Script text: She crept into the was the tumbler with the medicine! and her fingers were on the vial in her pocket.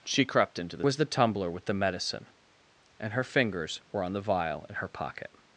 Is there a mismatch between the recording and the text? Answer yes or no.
no